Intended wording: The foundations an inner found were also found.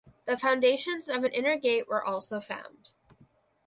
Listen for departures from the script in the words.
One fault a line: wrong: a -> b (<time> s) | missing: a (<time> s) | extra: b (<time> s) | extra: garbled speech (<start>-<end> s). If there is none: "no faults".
extra: of (1.1 s)
wrong: found -> gate (1.6 s)